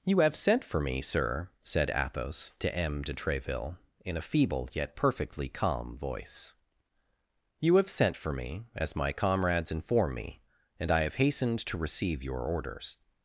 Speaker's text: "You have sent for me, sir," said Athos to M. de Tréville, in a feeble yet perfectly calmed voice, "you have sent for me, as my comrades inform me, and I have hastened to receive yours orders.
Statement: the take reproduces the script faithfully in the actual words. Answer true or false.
false